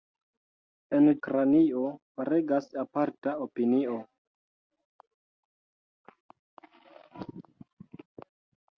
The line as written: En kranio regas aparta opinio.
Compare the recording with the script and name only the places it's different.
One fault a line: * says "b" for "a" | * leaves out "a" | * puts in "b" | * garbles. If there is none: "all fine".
all fine